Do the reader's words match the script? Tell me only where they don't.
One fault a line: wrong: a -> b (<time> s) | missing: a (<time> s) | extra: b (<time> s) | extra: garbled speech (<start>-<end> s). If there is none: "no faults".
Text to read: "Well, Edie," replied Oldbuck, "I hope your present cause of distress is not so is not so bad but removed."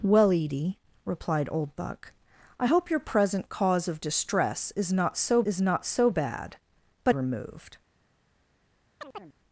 no faults